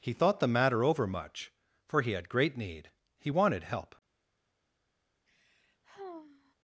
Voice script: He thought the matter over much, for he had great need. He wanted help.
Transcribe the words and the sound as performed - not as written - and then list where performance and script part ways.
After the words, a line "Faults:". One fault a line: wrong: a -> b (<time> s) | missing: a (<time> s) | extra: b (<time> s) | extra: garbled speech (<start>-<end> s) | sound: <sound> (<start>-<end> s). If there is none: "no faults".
He thought the matter over much, for he had great need. He wanted help.
Faults:
sound: sigh (5.3-6.6 s)